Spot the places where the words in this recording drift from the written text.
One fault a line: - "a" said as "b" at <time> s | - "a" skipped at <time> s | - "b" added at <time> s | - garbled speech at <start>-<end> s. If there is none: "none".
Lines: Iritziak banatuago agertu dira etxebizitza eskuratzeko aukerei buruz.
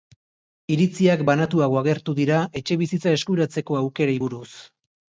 none